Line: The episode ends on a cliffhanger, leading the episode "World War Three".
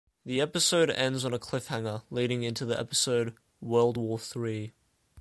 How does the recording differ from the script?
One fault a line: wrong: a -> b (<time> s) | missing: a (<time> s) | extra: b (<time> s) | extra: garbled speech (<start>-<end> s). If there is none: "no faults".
extra: into (2.4 s)